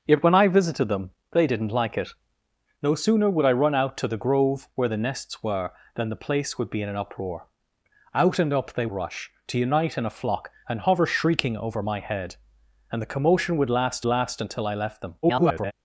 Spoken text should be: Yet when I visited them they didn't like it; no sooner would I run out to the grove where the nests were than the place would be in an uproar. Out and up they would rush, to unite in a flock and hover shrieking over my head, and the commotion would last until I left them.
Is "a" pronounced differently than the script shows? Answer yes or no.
no